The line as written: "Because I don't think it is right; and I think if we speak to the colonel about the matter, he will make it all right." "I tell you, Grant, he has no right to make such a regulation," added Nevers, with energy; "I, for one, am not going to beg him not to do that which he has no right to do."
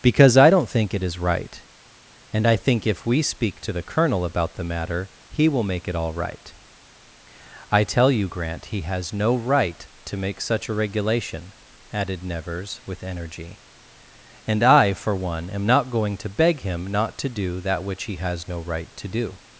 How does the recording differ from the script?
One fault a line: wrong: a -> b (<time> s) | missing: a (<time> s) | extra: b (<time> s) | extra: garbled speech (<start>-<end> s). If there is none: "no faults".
extra: and (14.5 s)